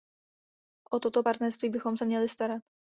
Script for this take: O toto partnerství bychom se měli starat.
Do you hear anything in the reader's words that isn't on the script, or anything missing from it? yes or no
no